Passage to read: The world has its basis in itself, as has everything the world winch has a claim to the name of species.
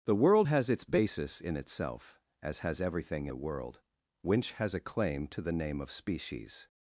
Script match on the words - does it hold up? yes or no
yes